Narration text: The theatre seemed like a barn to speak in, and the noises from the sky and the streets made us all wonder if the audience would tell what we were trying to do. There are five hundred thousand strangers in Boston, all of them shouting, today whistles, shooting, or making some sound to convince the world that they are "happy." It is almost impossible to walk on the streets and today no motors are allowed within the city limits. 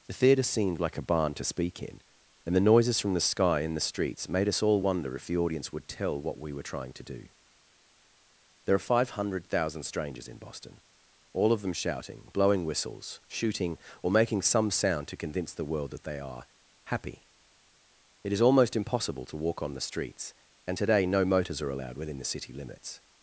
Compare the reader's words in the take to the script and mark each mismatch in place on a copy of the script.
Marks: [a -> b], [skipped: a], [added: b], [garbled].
The theatre seemed like a barn to speak in, and the noises from the sky and the streets made us all wonder if the audience would tell what we were trying to do. There are five hundred thousand strangers in Boston, all of them shouting, [today -> blowing] whistles, shooting, or making some sound to convince the world that they are "happy." It is almost impossible to walk on the streets and today no motors are allowed within the city limits.